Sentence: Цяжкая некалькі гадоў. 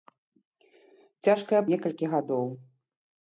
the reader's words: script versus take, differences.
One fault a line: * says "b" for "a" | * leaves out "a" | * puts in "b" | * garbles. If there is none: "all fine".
all fine